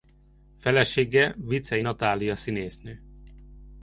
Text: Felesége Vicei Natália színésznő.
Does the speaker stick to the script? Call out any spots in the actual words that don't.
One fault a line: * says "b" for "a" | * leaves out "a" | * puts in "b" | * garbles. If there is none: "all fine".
all fine